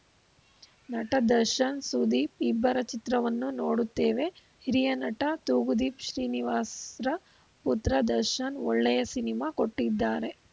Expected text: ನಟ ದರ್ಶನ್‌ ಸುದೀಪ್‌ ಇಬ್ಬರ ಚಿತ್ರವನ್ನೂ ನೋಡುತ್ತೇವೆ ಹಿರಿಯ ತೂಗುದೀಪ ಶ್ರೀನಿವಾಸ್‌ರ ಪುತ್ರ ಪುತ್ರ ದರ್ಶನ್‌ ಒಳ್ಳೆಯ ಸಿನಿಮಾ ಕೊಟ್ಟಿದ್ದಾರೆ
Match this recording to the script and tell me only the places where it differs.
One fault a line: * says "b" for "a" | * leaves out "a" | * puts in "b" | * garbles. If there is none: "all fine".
* puts in "ನಟ"
* leaves out "ಪುತ್ರ"